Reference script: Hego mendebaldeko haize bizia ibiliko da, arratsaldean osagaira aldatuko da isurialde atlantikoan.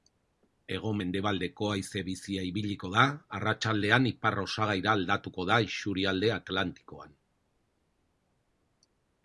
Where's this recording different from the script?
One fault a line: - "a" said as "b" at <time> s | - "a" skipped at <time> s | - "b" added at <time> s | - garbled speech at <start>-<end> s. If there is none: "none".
- "ipar" added at 4.1 s